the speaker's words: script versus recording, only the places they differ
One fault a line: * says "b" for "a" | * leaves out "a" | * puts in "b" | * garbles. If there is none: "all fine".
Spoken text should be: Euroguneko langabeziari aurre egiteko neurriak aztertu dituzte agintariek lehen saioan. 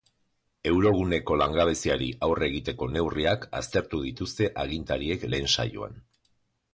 all fine